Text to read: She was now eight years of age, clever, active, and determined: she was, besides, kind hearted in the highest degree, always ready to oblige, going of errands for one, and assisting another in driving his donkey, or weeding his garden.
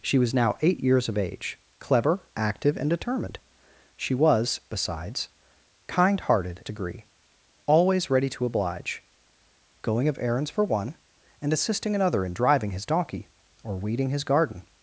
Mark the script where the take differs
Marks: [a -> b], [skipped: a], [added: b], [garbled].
She was now eight years of age, clever, active, and determined: she was, besides, kind hearted [skipped: in the highest] degree, always ready to oblige, going of errands for one, and assisting another in driving his donkey, or weeding his garden.